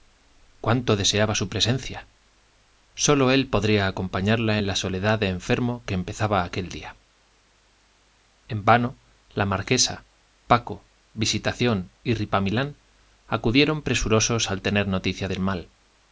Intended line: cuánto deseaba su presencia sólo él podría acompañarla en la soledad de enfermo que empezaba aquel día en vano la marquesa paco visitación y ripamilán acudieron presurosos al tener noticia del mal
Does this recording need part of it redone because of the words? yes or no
no